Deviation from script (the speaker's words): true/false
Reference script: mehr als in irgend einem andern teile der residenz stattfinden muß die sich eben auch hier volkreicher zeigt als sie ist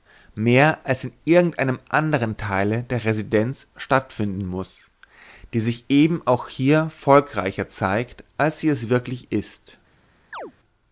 true